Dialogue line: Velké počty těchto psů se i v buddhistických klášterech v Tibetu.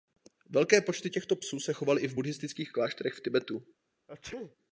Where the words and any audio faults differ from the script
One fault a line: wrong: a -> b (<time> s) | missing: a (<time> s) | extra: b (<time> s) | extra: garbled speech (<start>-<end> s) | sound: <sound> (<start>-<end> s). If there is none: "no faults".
extra: chovaly (1.7 s)
sound: sneeze (4.1-4.6 s)